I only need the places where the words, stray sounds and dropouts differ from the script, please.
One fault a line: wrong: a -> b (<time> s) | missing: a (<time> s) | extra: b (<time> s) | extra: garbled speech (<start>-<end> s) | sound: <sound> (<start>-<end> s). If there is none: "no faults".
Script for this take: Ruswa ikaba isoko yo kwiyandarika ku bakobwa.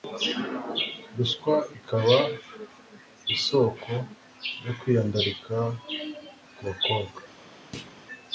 sound: thud (7.7-8.0 s)